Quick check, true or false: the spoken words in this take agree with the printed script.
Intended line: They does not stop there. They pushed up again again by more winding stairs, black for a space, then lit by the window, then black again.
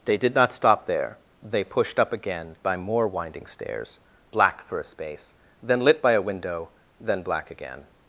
false